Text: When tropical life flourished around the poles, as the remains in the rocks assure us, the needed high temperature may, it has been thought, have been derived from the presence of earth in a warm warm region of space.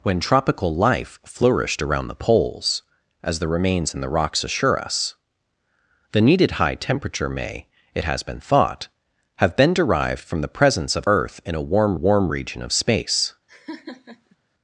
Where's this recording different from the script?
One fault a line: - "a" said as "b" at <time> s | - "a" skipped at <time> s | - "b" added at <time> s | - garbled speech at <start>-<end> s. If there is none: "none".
none